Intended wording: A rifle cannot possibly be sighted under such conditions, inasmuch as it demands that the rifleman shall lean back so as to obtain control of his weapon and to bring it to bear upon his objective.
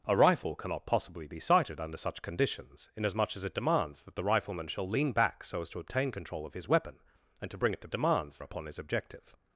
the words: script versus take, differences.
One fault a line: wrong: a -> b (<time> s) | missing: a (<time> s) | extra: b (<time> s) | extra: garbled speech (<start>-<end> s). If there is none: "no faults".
wrong: bear -> demands (7.9 s)